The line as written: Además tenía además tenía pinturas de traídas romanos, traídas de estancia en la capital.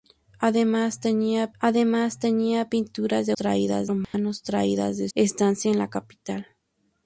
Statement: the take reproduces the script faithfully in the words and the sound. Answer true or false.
false